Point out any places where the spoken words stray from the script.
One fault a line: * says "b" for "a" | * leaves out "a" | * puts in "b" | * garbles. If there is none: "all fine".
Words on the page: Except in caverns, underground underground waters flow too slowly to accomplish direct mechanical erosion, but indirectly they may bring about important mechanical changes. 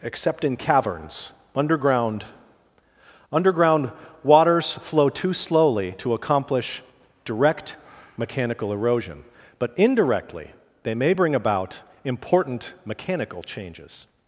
all fine